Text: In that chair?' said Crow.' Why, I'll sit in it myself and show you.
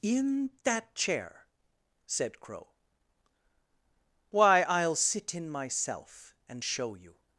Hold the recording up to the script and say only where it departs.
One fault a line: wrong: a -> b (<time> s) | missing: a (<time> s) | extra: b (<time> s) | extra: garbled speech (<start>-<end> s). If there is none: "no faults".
missing: it (5.5 s)